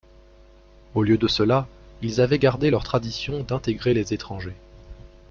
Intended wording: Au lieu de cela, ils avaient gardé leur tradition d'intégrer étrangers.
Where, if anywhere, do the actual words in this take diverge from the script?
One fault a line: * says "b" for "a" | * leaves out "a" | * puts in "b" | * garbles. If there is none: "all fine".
* puts in "les"